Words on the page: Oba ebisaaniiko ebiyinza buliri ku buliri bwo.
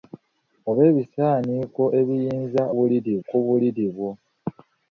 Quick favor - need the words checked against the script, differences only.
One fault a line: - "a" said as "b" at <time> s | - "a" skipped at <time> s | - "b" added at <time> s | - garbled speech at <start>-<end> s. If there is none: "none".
none